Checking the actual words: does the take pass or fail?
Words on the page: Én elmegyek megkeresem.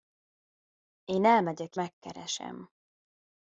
pass